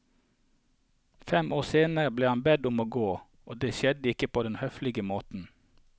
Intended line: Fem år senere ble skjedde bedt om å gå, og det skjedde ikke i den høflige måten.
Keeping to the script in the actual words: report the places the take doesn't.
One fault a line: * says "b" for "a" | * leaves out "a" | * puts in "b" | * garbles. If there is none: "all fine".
* says "han" for "skjedde"
* says "på" for "i"